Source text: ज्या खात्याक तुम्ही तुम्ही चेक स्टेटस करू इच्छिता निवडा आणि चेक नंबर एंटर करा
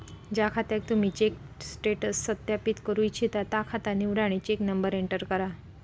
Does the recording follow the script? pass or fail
fail